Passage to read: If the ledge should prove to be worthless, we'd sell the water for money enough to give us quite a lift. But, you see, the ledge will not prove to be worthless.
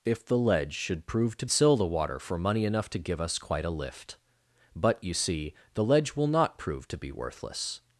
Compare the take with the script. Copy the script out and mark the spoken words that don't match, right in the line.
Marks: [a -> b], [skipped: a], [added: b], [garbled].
If the ledge should prove to [skipped: be worthless, we'd] sell the water for money enough to give us quite a lift. But, you see, the ledge will not prove to be worthless.